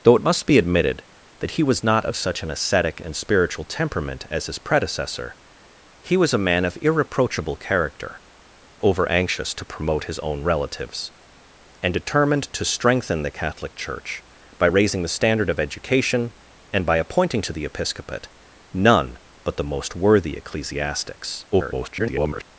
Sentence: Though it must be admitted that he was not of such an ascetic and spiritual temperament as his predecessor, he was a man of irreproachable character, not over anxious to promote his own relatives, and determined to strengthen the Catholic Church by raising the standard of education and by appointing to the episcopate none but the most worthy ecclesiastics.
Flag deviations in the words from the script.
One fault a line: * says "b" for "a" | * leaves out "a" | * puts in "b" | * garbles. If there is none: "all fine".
* leaves out "not"
* garbles